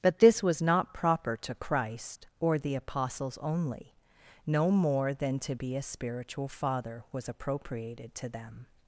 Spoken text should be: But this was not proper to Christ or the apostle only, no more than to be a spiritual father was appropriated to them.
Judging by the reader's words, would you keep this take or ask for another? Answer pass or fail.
fail